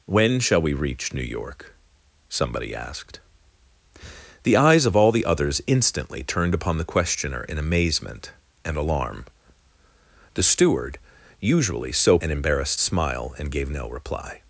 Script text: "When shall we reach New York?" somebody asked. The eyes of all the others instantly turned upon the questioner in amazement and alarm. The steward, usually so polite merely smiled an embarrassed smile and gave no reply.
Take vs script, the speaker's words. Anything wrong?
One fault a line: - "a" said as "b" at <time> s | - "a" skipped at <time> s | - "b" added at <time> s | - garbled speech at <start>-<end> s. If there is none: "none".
- "polite merely smiled" skipped at 12.2 s